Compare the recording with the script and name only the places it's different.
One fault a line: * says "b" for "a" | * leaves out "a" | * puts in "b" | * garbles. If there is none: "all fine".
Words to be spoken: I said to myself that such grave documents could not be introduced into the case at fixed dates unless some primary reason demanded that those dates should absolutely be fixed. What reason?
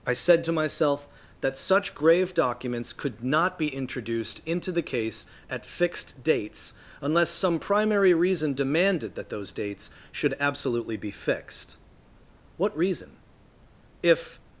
* puts in "If"